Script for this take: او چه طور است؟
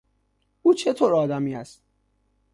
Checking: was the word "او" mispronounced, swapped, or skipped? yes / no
no